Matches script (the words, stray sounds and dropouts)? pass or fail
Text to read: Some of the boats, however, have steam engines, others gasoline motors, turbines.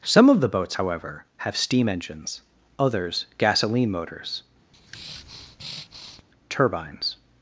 fail